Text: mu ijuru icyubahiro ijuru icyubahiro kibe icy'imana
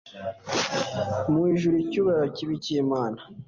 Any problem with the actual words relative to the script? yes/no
yes